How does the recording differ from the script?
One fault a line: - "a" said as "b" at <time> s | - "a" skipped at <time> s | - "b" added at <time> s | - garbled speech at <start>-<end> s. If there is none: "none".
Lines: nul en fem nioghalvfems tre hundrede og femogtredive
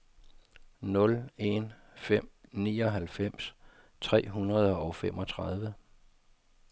none